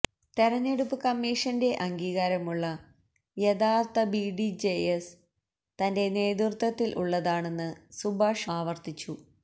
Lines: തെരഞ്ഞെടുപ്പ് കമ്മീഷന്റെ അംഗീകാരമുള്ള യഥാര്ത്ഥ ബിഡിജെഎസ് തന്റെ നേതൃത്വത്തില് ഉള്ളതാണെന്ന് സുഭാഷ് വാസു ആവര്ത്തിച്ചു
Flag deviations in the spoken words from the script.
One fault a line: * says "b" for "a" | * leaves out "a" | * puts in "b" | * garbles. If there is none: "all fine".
* leaves out "വാസു"